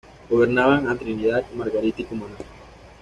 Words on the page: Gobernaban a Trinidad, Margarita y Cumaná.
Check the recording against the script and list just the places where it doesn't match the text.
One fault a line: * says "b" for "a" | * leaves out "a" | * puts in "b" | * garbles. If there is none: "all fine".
all fine